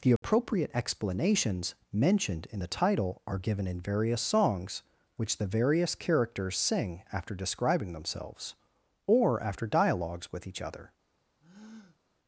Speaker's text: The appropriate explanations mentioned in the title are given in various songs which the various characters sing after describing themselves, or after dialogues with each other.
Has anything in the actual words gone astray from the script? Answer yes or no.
no